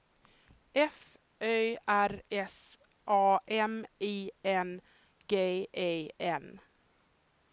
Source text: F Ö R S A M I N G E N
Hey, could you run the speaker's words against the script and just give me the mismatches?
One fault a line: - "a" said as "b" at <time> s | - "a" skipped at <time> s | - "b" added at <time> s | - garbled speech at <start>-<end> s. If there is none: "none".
none